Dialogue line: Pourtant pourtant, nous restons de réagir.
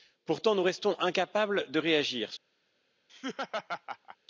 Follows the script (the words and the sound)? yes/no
no